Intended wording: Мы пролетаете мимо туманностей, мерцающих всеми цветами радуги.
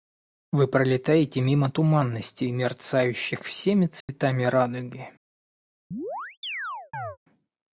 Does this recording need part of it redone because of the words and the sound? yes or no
yes